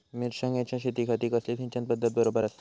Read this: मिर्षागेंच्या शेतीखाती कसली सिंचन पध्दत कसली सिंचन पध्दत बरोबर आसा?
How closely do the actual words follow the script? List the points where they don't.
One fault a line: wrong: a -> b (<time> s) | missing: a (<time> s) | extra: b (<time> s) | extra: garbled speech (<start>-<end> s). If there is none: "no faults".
missing: कसली सिंचन पध्दत (2.1 s)